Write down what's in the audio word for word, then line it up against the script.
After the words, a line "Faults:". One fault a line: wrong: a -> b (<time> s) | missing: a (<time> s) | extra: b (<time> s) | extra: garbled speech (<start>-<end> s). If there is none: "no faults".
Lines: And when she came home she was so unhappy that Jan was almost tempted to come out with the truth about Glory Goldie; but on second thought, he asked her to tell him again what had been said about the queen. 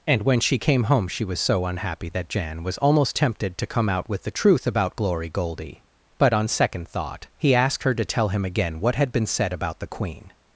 And when she came home she was so unhappy that Jan was almost tempted to come out with the truth about Glory Goldie; but on second thought, he asked her to tell him again what had been said about the queen.
Faults:
no faults